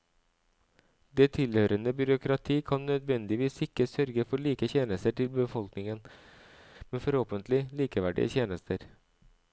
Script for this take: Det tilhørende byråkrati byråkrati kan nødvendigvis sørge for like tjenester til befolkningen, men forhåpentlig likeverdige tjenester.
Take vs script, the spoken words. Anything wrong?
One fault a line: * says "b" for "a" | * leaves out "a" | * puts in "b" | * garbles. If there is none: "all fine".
* leaves out "byråkrati"
* puts in "ikke"